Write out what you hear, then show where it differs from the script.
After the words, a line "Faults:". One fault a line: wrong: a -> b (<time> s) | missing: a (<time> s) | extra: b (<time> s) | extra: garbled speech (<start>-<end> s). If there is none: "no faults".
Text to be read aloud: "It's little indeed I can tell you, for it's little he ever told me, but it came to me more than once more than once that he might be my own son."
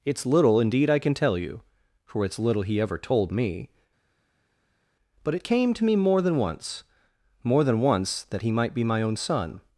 "It's little indeed I can tell you, for it's little he ever told me, but it came to me more than once more than once that he might be my own son."
Faults:
no faults